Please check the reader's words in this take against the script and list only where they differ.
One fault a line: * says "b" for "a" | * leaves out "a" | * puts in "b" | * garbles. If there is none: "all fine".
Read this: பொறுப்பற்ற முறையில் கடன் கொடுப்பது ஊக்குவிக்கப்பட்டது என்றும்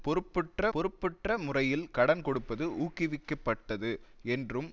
* puts in "பொறுப்பற்ற"